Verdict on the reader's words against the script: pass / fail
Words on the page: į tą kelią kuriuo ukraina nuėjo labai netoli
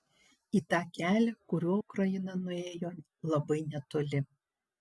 pass